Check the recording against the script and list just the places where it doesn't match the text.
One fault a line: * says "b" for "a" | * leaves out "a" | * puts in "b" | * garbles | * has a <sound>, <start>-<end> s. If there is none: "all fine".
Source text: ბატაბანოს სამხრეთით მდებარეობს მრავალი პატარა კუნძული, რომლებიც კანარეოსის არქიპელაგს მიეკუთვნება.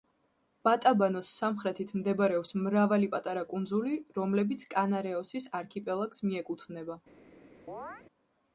* has a chirp, 7.7-8.0 s